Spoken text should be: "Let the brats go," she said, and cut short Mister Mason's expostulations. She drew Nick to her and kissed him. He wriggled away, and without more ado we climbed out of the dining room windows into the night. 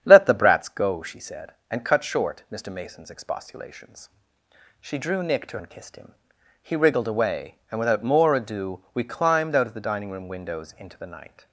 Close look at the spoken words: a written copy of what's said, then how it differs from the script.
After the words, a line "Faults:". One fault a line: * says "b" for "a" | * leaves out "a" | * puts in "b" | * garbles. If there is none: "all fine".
"Let the brats go," she said, and cut short Mister Mason's expostulations. She drew Nick to and kissed him. He wriggled away, and without more ado we climbed out of the dining room windows into the night.
Faults:
* leaves out "her"